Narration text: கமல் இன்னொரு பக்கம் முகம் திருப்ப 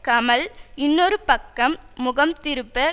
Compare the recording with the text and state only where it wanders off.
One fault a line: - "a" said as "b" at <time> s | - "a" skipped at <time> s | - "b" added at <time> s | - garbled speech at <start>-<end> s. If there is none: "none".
none